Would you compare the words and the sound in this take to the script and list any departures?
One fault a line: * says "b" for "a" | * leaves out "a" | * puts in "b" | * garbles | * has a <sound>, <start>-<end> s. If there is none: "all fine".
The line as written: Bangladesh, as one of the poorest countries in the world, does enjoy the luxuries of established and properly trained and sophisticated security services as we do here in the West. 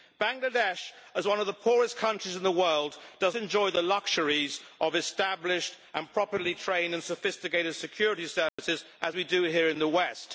* has a dropout, 8.5-8.6 s